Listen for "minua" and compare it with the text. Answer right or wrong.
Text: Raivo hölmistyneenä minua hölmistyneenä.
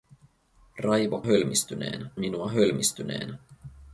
right